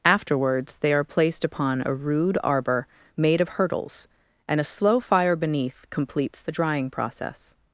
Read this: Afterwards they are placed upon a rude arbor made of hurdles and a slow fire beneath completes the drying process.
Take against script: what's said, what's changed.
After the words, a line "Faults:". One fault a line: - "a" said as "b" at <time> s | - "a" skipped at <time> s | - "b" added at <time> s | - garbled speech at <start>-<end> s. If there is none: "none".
Afterwards they are placed upon a rude arbor made of hurdles and a slow fire beneath completes the drying process.
Faults:
none